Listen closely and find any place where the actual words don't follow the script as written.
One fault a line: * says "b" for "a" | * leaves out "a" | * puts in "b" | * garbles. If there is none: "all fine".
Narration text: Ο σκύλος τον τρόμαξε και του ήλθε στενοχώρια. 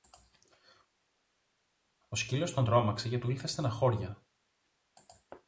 all fine